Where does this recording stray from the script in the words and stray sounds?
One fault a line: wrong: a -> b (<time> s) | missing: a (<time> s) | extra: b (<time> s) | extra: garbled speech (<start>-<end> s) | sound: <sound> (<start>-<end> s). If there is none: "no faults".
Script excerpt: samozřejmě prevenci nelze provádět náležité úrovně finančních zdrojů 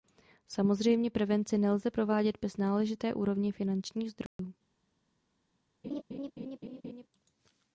extra: bez (2.4 s)
sound: dropout (4.3-4.4 s)
sound: laugh (5.8-7.1 s)